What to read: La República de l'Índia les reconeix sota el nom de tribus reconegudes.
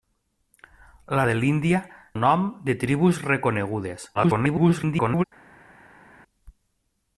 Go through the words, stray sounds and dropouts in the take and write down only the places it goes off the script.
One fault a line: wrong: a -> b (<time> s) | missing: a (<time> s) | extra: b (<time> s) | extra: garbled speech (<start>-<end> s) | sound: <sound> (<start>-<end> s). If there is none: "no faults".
missing: República (1.2 s)
missing: les reconeix sota (1.8 s)
extra: garbled speech (4.1-5.2 s)